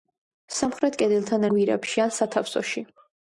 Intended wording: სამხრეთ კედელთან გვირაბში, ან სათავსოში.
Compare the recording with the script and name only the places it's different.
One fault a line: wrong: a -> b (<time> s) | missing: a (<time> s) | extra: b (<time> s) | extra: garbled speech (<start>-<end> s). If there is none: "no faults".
no faults